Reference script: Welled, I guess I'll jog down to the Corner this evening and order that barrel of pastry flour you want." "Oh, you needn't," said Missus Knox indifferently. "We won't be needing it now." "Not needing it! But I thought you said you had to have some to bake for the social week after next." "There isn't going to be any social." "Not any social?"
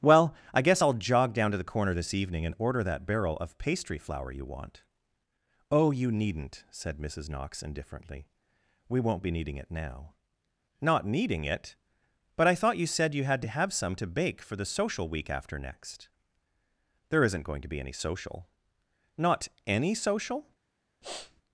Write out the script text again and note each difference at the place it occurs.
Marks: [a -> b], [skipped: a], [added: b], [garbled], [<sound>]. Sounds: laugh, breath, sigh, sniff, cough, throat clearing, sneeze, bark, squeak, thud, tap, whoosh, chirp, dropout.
[Welled, -> Well] I guess I'll jog down to the Corner this evening and order that barrel of pastry flour you want." "Oh, you needn't," said Missus Knox indifferently. "We won't be needing it now." "Not needing it! But I thought you said you had to have some to bake for the social week after next." "There isn't going to be any social." "Not any social?" [sniff]